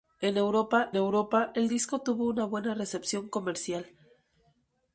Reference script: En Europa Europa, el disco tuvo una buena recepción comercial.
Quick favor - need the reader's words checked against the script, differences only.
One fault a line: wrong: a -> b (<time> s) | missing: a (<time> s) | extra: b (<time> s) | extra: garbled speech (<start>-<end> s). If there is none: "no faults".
no faults